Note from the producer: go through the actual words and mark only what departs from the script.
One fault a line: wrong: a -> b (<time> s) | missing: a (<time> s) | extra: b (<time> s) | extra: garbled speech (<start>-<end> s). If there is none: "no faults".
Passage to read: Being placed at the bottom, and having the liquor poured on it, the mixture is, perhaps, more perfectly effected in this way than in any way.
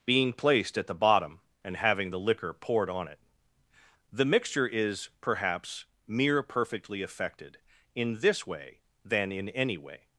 wrong: more -> mere (6.1 s)